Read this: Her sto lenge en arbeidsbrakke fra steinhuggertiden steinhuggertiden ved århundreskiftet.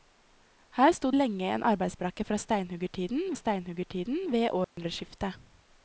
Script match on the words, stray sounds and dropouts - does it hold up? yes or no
no